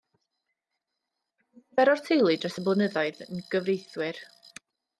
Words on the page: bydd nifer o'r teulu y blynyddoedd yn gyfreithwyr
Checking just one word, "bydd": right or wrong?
wrong